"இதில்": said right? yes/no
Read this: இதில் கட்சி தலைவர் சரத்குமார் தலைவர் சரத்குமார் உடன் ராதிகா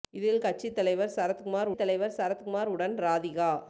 yes